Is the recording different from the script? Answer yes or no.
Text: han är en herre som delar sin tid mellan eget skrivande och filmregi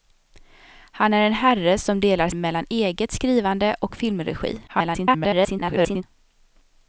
yes